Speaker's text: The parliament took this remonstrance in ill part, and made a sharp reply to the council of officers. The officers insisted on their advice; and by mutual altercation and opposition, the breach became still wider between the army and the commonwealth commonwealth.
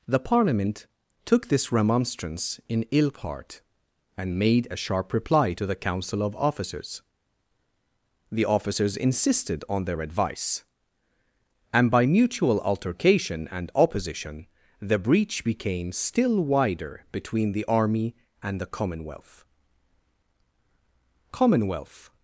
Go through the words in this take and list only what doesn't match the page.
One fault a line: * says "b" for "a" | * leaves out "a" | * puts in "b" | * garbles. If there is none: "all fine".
all fine